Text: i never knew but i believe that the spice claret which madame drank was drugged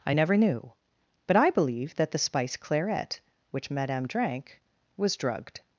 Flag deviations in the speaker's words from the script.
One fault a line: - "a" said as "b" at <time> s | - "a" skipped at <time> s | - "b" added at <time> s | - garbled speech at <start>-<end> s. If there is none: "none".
none